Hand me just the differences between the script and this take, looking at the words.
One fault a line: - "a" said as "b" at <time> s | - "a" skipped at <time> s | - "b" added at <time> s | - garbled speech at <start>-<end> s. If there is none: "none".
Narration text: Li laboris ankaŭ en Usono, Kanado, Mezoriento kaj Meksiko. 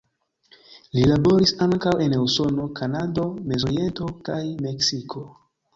none